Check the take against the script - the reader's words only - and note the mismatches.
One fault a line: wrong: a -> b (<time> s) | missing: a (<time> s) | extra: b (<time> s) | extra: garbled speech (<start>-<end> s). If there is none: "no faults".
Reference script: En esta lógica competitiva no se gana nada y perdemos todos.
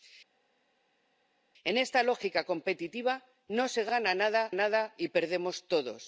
extra: nada (4.5 s)